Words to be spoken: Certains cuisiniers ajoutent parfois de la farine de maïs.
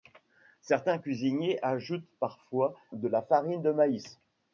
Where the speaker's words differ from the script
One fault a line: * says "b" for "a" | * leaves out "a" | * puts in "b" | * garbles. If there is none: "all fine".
all fine